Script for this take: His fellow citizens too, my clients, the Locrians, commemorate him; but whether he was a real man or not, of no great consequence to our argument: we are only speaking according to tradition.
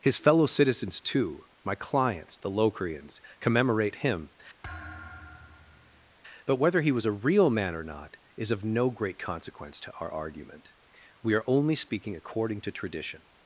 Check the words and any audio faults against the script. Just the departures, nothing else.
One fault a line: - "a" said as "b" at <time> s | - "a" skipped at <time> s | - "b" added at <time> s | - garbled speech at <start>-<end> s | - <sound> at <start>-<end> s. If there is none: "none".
- thud at 4.6-6.1 s
- "is" added at 8.4 s